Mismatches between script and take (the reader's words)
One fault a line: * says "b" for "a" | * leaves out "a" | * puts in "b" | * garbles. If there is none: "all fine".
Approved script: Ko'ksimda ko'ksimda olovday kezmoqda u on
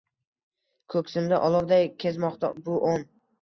* leaves out "ko'ksimda"
* says "bu" for "u"